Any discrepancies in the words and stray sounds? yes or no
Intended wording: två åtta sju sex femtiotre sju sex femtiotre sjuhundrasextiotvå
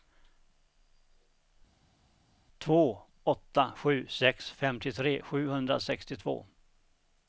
yes